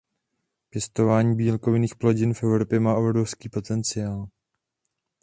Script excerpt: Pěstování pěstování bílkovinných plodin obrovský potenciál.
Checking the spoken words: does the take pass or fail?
fail